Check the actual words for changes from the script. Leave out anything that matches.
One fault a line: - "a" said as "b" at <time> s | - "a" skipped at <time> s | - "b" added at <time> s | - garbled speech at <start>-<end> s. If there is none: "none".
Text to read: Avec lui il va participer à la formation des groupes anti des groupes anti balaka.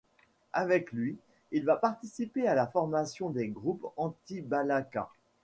- "des groupes anti" skipped at 4.4 s